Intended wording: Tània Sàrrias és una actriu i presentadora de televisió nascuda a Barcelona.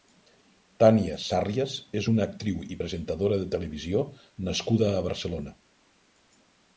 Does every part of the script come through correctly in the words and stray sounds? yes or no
yes